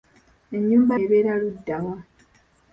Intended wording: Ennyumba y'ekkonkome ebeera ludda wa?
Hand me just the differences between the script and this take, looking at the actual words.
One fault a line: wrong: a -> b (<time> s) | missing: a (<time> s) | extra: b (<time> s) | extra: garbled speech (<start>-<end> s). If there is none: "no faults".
missing: y'ekkonkome (0.9 s)